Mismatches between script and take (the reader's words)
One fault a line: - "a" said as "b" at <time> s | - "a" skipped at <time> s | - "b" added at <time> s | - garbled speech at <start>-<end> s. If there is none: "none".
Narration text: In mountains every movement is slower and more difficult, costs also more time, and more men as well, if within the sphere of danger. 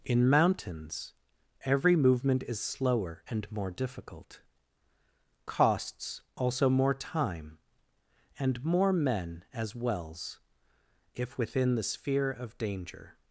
- "well" said as "wells" at 9.7 s